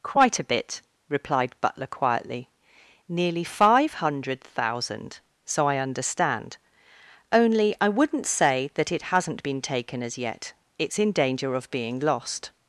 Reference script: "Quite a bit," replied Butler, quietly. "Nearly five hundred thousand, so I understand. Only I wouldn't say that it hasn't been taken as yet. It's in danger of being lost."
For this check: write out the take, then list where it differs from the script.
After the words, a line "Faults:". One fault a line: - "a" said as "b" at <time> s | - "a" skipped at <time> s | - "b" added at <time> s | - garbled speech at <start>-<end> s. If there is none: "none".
"Quite a bit," replied Butler, quietly. "Nearly five hundred thousand, so I understand. Only I wouldn't say that it hasn't been taken as yet. It's in danger of being lost."
Faults:
none